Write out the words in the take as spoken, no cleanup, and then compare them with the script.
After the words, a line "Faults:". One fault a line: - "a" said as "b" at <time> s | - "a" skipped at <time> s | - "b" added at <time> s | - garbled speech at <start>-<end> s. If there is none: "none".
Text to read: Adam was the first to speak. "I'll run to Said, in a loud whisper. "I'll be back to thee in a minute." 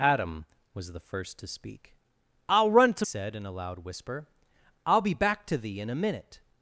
Adam was the first to speak. "I'll run to Said, in a loud whisper. "I'll be back to thee in a minute."
Faults:
none